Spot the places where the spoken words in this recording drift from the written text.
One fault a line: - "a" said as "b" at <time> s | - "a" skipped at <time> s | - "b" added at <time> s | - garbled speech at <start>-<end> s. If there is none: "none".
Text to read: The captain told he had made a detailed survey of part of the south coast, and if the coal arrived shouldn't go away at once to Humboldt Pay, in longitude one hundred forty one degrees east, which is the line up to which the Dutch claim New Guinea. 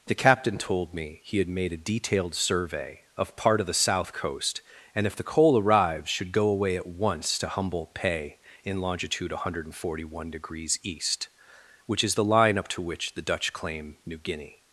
- "me" added at 0.9 s
- "shouldn't" said as "should" at 6.1 s